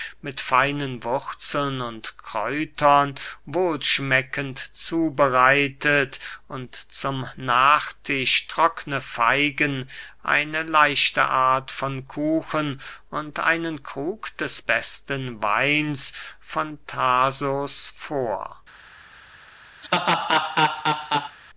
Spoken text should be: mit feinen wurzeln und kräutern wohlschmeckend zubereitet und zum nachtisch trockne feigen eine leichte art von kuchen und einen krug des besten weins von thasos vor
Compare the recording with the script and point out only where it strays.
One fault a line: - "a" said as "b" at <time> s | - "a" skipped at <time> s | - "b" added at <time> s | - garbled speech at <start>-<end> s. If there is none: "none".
none